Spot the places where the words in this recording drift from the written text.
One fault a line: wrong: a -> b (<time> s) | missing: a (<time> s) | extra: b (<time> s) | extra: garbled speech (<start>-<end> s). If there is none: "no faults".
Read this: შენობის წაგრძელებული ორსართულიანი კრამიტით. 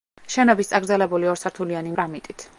no faults